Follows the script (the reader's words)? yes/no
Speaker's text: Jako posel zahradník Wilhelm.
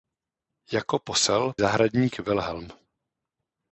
yes